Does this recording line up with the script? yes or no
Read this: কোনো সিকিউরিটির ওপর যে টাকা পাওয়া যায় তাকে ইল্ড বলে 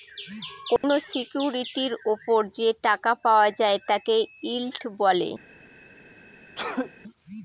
yes